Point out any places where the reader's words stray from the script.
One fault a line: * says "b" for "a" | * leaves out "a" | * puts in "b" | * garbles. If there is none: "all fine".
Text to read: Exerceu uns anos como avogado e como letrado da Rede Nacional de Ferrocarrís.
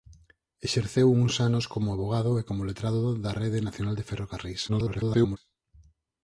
* garbles